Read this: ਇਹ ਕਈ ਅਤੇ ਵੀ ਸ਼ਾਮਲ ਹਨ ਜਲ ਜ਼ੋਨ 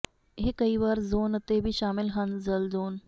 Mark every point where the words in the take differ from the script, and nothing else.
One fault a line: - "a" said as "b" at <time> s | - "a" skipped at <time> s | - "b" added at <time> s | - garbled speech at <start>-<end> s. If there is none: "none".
- "ਵਾਰ ਜ਼ੋਨ" added at 0.8 s